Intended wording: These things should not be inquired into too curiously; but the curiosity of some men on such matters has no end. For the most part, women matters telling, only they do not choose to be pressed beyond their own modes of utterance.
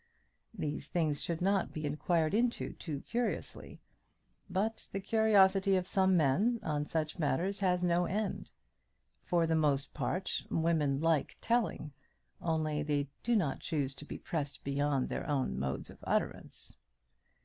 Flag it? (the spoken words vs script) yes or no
yes